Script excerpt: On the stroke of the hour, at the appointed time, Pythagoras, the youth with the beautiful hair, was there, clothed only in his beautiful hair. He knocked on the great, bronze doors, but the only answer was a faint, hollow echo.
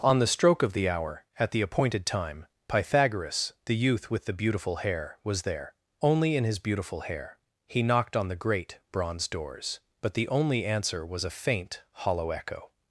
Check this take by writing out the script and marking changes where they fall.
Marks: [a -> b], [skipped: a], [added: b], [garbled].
On the stroke of the hour, at the appointed time, Pythagoras, the youth with the beautiful hair, was there, [skipped: clothed] only in his beautiful hair. He knocked on the great, bronze doors, but the only answer was a faint, hollow echo.